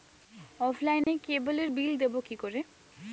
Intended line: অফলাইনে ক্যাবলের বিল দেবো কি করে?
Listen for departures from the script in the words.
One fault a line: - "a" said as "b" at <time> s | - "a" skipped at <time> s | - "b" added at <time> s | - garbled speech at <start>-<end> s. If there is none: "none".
none